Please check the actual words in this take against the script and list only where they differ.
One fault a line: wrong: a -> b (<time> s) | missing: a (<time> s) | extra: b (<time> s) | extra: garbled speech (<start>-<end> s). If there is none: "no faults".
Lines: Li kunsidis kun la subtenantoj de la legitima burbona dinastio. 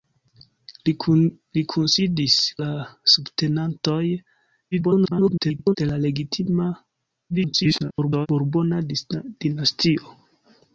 missing: kun (2.4 s)
extra: garbled speech (4.7-5.8 s)
extra: garbled speech (7.3-8.3 s)